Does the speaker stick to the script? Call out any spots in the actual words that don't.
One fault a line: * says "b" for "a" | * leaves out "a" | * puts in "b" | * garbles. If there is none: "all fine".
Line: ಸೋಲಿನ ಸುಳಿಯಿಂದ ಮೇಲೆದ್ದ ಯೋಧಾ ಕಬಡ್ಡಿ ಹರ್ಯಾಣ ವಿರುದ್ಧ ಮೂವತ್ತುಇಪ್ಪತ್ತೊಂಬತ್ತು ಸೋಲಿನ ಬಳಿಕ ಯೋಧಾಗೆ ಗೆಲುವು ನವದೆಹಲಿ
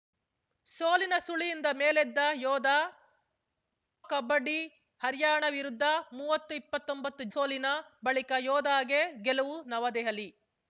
all fine